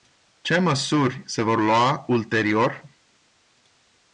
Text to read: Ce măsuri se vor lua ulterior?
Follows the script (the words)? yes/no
yes